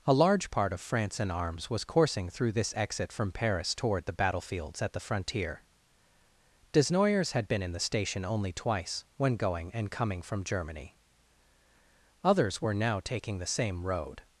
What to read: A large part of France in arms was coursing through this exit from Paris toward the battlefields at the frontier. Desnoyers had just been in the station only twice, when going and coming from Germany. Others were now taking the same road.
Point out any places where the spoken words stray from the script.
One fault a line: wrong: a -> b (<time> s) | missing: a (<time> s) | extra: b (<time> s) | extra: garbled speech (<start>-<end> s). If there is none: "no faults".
missing: just (7.5 s)